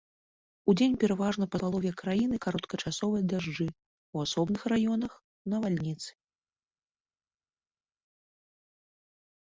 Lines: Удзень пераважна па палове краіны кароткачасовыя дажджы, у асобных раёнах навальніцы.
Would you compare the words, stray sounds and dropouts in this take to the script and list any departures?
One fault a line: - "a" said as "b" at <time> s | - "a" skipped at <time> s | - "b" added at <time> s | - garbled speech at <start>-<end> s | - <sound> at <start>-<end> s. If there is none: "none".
none